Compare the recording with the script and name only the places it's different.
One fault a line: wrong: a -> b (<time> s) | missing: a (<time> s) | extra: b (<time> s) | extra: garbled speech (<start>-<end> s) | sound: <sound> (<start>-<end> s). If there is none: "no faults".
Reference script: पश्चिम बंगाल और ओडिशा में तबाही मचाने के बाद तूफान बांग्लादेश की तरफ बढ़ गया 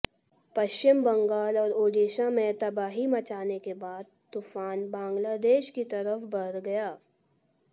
no faults